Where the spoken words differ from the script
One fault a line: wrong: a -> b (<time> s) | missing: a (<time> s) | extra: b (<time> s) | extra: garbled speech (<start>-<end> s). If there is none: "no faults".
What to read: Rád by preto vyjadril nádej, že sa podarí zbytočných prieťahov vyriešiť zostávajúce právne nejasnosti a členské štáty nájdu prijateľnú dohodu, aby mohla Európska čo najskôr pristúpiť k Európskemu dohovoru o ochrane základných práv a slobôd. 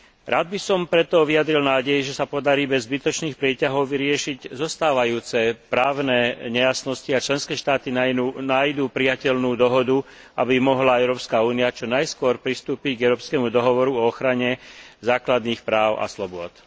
extra: som (0.6 s)
extra: bez (2.7 s)
extra: únia (11.4 s)